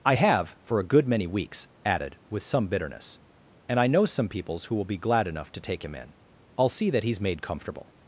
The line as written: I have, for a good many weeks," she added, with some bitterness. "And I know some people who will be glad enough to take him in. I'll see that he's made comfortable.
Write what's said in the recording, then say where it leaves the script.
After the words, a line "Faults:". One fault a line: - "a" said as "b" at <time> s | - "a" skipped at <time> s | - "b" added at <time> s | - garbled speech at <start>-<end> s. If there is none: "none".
I have, for a good many weeks," added, with some bitterness. "And I know some peoples who will be glad enough to take him in. I'll see that he's made comfortable.
Faults:
- "she" skipped at 1.7 s
- "people" said as "peoples" at 4.3 s